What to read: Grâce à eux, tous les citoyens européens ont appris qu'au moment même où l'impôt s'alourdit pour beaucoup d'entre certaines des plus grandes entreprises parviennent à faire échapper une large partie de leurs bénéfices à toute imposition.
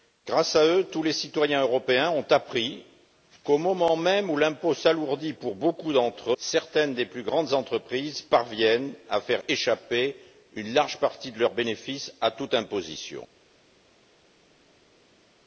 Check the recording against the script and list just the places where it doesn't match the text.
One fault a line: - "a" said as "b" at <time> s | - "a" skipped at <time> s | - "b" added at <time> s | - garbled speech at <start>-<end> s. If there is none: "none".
none